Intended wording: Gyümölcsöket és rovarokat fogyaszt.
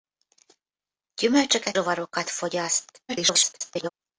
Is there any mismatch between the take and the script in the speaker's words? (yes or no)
yes